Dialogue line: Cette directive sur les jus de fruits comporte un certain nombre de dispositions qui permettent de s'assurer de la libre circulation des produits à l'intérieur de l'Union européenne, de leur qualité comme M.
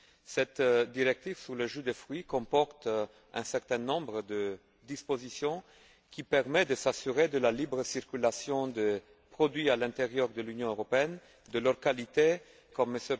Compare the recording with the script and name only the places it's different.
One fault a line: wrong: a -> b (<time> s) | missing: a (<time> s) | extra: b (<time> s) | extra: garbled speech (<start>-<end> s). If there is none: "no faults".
no faults